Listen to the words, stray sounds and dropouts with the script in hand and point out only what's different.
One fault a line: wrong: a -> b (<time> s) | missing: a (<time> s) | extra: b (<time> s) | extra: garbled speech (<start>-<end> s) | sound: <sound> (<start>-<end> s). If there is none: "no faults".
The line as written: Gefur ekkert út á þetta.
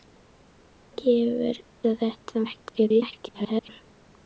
missing: ekkert út (1.6 s)
extra: garbled speech (2.4-3.7 s)